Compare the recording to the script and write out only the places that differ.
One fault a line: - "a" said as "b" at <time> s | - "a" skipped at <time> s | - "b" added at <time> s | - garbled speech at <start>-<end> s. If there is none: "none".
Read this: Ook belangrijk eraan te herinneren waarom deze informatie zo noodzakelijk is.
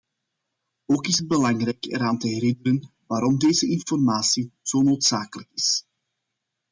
- "is het" added at 1.1 s